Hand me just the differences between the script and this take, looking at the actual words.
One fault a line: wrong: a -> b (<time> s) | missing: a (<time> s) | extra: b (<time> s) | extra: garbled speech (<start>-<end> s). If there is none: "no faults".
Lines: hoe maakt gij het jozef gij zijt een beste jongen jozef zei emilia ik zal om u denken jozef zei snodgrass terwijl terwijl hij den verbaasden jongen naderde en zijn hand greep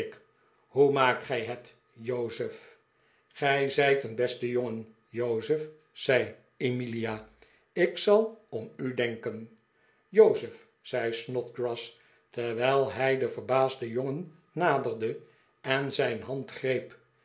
missing: terwijl (12.9 s)